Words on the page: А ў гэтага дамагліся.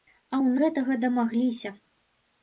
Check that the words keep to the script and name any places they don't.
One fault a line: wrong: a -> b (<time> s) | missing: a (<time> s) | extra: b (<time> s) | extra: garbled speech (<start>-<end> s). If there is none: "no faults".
no faults